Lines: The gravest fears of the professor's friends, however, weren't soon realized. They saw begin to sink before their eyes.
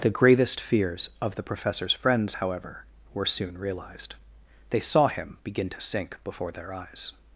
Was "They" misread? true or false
false